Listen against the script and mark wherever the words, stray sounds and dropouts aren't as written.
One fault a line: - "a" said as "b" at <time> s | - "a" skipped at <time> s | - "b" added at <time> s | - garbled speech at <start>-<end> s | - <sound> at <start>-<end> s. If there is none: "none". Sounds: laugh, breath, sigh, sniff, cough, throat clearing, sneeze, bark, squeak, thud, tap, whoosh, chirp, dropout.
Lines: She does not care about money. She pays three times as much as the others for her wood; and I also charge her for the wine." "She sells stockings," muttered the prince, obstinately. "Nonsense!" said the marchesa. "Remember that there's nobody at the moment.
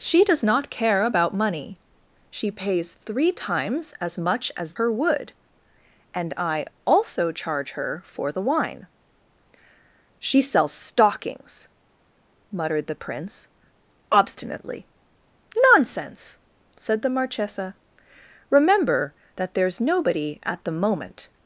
- "the others for" skipped at 4.7 s